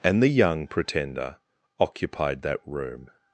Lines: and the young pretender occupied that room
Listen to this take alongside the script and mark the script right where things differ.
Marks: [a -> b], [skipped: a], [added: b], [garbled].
and the young pretender occupied that room